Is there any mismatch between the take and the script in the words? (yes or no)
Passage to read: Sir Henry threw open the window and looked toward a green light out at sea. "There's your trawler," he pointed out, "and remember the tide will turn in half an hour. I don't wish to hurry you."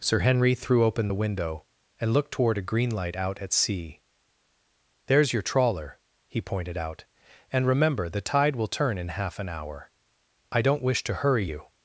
no